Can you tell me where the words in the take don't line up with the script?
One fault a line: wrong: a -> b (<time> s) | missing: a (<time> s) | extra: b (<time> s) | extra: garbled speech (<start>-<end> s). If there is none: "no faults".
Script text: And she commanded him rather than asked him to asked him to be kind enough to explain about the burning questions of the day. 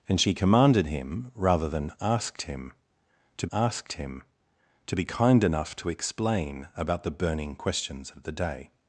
no faults